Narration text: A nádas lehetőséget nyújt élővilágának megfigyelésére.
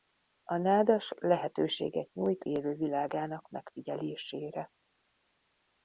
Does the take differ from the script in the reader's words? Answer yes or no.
no